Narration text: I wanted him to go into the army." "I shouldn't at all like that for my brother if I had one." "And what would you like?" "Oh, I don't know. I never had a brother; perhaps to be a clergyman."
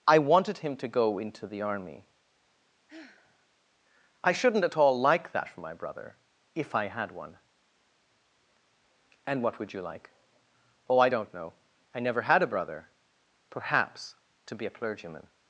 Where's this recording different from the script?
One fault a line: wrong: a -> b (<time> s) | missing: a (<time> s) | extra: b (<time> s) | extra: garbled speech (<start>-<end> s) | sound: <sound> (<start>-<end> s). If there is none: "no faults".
sound: sigh (2.9-3.5 s)